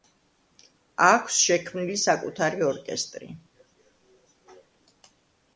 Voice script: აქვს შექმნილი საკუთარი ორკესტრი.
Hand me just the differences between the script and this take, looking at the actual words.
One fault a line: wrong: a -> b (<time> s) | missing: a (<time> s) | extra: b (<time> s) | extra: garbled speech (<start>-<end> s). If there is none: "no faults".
no faults